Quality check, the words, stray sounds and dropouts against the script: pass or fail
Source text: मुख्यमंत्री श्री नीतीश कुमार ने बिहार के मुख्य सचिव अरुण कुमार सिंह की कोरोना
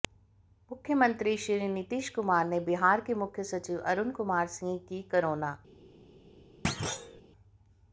fail